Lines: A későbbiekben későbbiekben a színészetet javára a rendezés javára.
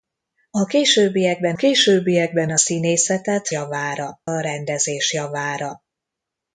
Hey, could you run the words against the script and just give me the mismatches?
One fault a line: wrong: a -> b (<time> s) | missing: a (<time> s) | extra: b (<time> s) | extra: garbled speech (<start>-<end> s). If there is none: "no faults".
no faults